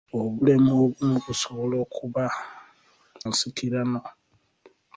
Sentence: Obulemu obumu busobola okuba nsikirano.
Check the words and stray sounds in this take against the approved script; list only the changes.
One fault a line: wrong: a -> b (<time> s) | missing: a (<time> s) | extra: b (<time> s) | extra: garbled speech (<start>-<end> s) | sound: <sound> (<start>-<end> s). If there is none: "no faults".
no faults